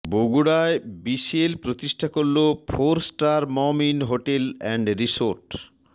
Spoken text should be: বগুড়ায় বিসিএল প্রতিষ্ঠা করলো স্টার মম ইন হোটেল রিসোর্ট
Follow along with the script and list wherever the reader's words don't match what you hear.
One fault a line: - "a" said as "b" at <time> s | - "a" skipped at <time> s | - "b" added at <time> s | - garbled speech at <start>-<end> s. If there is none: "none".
- "ফোর" added at 2.7 s
- "এন্ড" added at 4.6 s